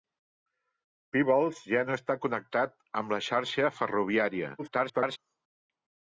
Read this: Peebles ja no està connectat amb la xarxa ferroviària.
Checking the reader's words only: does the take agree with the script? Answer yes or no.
no